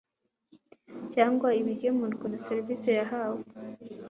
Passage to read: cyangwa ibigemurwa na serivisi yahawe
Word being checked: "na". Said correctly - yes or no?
yes